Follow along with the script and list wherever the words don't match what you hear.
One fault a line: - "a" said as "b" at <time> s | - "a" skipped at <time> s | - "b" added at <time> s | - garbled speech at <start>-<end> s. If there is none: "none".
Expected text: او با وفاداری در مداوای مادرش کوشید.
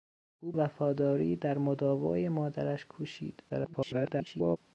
- "با" skipped at 0.5 s
- garbled speech at 3.5-4.6 s